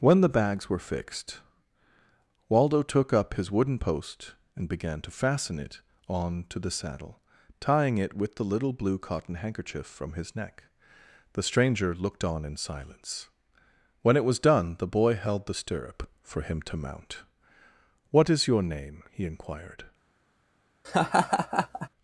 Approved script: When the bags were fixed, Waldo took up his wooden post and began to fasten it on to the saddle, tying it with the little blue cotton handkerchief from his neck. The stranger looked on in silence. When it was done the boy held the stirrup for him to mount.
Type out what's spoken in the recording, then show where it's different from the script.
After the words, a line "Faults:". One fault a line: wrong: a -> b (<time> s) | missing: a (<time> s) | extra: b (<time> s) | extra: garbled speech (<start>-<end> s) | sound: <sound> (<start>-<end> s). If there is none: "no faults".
When the bags were fixed, Waldo took up his wooden post and began to fasten it on to the saddle, tying it with the little blue cotton handkerchief from his neck. The stranger looked on in silence. When it was done the boy held the stirrup for him to mount. "What is your name?" he inquired
Faults:
extra: What is your name he inquired (18.1 s)
sound: laugh (20.8-21.9 s)